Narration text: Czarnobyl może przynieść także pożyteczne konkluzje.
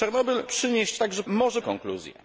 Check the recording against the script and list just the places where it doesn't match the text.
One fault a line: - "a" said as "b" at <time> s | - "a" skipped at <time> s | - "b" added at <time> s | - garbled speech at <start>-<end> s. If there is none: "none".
- "może" skipped at 0.4 s
- "pożyteczne" said as "może" at 1.3 s